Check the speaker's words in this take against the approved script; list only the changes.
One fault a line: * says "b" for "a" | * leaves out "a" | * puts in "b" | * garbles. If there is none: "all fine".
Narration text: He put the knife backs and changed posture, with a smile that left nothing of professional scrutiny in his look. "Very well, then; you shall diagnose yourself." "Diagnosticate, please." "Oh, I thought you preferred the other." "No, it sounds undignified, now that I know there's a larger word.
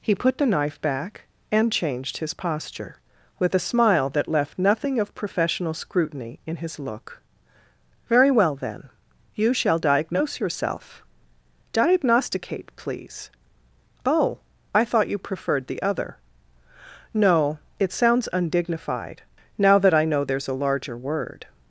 * says "back" for "backs"
* puts in "his"